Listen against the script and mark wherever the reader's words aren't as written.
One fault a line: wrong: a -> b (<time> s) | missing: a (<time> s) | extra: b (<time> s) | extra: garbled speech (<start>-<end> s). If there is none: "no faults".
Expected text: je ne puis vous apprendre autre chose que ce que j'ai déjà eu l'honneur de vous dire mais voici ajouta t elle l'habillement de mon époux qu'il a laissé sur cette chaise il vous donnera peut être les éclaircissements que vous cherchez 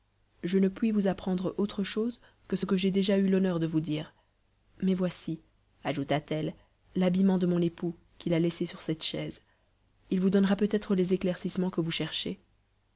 no faults